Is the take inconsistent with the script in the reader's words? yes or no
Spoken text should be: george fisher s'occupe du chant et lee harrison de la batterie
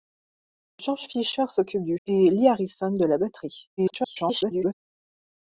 yes